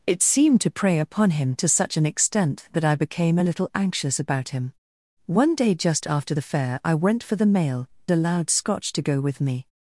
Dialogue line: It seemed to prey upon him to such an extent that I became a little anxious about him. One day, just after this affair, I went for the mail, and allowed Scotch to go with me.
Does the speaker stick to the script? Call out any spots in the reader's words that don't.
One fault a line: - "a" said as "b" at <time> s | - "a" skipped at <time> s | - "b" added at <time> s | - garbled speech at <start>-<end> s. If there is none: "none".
- "this" skipped at 6.3 s
- "and" skipped at 7.9 s